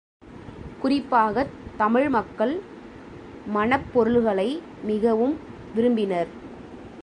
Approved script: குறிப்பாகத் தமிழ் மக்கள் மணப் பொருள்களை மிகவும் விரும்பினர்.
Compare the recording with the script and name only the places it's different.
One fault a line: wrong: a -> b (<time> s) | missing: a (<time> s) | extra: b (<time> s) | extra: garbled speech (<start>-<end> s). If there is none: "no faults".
no faults